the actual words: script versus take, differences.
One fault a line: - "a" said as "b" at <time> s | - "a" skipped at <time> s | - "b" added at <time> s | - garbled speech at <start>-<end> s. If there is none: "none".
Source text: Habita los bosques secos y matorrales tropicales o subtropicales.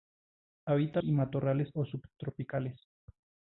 - "los bosques secos" skipped at 1.0 s
- "tropicales" skipped at 1.7 s